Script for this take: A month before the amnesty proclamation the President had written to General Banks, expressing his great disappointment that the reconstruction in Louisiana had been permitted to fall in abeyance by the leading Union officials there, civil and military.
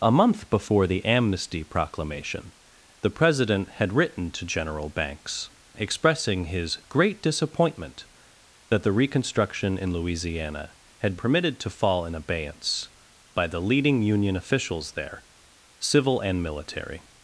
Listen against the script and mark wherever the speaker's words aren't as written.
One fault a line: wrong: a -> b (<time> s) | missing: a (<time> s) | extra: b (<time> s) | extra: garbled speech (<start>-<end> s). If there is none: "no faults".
missing: been (11.2 s)